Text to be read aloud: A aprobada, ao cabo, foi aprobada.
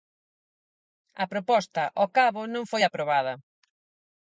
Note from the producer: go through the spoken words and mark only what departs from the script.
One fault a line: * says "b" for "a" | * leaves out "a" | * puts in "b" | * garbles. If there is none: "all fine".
* says "proposta" for "aprobada"
* puts in "non"